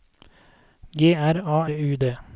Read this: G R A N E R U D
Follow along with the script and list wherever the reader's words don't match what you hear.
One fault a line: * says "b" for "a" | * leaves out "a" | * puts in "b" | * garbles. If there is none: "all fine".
* leaves out "N E R"